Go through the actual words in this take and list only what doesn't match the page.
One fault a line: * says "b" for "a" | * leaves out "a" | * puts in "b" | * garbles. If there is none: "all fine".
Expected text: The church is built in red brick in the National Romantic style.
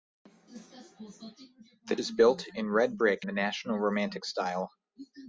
* leaves out "church"
* leaves out "in"